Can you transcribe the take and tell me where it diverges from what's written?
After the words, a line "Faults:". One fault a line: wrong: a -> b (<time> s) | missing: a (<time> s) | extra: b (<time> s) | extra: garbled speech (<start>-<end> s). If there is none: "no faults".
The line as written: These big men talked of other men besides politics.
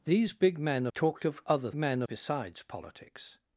These big men talked of other men besides politics.
Faults:
no faults